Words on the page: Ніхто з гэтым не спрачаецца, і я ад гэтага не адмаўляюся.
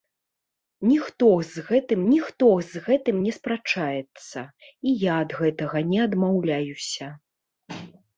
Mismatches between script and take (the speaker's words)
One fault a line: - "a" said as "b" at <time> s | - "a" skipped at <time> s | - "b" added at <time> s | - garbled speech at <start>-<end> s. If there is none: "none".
- "ніхто з гэтым" added at 2.1 s